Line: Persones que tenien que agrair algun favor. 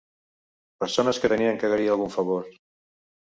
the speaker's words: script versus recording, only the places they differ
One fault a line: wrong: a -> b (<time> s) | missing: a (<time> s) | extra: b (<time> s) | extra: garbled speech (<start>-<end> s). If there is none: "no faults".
no faults